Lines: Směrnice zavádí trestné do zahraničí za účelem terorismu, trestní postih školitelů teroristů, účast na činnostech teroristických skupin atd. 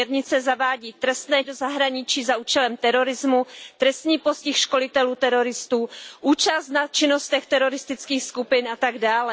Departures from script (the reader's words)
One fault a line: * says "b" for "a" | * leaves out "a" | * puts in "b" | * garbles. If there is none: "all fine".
all fine